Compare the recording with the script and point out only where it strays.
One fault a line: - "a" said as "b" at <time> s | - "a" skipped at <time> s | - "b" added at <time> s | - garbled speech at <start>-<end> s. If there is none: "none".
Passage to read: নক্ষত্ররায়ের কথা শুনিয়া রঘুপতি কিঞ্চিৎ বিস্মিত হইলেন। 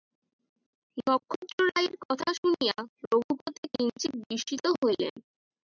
none